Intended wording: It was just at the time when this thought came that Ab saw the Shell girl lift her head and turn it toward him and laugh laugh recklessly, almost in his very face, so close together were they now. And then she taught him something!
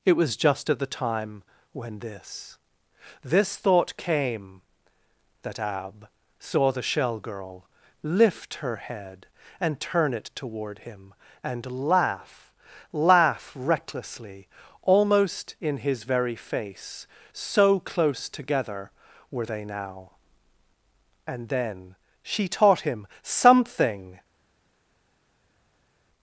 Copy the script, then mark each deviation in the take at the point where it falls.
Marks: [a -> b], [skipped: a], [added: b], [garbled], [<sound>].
It was just at the time when this [added: this] thought came that Ab saw the Shell girl lift her head and turn it toward him and laugh laugh recklessly, almost in his very face, so close together were they now. And then she taught him something!